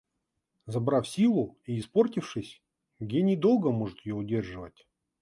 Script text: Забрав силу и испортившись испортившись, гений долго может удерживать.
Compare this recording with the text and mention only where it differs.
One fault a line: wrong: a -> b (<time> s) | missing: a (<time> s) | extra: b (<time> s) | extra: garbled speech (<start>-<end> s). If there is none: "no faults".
missing: испортившись (2.6 s)
extra: ее (4.1 s)